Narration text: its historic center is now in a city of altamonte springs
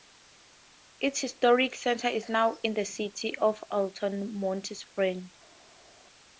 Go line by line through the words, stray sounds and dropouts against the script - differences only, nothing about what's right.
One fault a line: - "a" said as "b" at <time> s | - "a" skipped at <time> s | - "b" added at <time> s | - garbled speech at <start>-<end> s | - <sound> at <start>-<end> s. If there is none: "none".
- "a" said as "the" at 2.7 s